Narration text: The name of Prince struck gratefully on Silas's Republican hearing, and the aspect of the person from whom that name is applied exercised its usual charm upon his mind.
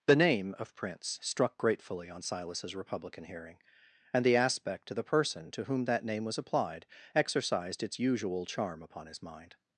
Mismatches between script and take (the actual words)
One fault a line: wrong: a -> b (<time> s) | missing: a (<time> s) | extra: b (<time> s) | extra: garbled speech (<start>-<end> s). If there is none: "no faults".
wrong: from -> to (5.5 s)
wrong: is -> was (6.2 s)